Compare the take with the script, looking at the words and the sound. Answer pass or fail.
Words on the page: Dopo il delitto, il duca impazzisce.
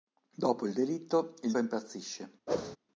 fail